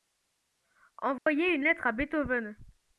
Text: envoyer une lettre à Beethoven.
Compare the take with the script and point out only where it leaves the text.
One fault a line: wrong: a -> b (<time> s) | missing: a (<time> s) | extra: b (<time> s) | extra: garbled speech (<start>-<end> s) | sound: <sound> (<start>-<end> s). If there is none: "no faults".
sound: dropout (1.2-1.3 s)